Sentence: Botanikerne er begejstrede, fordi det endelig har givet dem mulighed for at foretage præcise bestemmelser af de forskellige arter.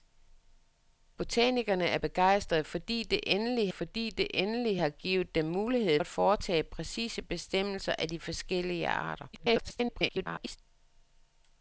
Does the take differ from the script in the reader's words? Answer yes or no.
yes